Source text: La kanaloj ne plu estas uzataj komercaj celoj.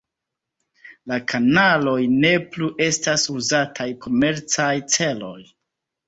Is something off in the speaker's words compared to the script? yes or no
no